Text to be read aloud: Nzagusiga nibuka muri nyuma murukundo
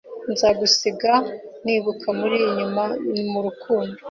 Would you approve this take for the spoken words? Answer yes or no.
yes